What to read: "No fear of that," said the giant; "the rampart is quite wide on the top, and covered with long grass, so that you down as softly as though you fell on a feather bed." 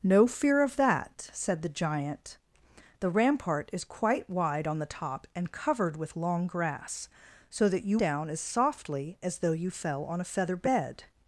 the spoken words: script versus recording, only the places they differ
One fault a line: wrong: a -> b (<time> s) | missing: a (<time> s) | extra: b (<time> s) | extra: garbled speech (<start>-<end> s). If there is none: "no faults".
no faults